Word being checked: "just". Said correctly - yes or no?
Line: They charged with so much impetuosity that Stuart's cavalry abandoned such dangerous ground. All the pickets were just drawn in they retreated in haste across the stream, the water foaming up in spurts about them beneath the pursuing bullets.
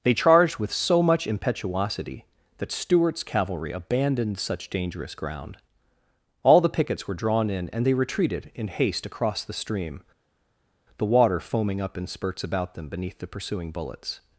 no